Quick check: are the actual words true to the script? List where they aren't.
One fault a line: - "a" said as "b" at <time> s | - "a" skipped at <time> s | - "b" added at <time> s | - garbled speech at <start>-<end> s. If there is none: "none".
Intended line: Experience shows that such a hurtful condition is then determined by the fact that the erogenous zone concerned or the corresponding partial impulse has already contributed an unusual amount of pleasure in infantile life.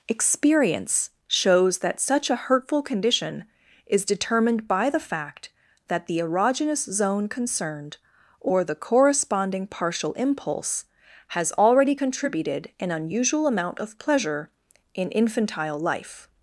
- "then" skipped at 4.0 s